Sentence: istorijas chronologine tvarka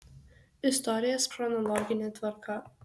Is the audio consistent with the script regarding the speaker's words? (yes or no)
yes